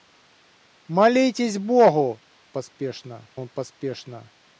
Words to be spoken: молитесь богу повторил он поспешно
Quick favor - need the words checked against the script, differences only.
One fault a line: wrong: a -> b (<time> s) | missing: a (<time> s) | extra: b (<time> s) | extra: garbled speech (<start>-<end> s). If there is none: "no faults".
wrong: повторил -> поспешно (2.5 s)